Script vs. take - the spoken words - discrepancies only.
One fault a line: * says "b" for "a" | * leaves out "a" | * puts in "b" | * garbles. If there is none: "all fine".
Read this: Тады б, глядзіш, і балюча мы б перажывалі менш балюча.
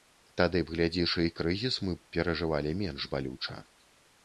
* says "крызіс" for "балюча"